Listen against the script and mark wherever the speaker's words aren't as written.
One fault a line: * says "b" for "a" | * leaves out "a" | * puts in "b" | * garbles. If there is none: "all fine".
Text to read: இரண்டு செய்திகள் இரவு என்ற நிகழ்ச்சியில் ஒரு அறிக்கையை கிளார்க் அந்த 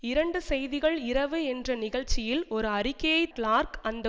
all fine